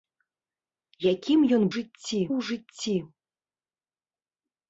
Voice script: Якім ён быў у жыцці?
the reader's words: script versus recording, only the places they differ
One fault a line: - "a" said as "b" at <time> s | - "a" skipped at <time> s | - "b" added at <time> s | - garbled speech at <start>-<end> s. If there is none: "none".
- "быў" said as "жыцці" at 1.8 s